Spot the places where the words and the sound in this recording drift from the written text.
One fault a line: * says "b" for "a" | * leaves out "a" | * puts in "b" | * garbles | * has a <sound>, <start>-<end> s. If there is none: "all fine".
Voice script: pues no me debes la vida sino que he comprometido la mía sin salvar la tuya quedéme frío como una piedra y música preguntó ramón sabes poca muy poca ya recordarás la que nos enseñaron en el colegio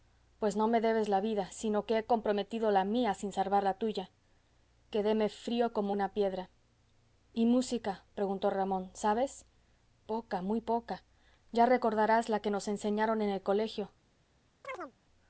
* has a chirp, 14.6-14.9 s